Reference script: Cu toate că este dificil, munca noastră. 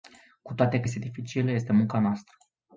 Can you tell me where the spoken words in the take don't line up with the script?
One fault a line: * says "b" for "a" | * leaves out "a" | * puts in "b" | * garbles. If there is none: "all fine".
* puts in "este"